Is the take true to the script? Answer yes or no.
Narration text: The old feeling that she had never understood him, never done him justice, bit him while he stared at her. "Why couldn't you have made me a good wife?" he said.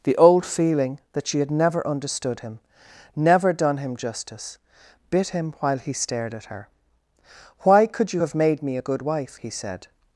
no